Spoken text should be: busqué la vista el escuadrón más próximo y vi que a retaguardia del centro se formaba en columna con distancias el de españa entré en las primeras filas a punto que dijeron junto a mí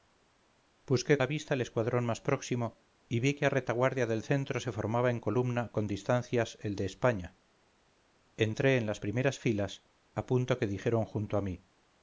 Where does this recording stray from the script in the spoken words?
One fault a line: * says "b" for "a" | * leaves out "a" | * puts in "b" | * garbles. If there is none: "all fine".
all fine